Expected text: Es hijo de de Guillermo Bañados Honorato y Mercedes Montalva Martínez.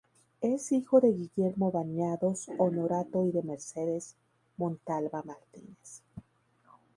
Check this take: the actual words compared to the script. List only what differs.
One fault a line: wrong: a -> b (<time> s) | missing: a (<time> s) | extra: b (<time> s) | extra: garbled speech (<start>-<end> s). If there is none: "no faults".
missing: de (1.1 s)
extra: de (3.3 s)